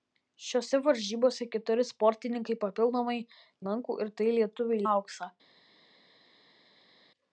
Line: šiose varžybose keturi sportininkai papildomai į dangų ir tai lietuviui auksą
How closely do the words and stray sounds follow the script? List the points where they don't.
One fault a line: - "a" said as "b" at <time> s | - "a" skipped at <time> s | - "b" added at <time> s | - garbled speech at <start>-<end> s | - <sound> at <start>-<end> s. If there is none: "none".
none